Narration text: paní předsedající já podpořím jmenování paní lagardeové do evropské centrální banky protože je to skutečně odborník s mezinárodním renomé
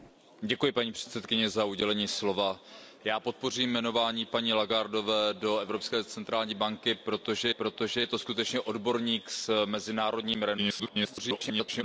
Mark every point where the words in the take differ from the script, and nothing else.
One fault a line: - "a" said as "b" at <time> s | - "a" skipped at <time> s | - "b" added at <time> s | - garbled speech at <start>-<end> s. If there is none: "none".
- "protože" added at 7.5 s
- garbled speech at 10.6-11.8 s